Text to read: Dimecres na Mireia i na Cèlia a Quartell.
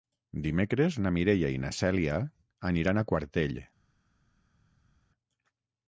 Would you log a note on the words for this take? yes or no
yes